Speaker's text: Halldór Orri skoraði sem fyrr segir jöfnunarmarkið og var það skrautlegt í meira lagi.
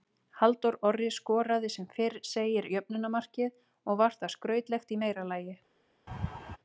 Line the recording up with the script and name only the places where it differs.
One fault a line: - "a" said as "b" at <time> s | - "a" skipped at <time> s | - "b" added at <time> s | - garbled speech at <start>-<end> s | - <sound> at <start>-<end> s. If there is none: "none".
- laugh at 6.1-6.6 s